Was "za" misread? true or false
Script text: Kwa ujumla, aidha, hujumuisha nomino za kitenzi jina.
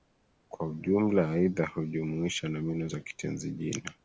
false